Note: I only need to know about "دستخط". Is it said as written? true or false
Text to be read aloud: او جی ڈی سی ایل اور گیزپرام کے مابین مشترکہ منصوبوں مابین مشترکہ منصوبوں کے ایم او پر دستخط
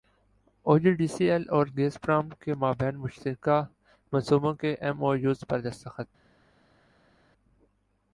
true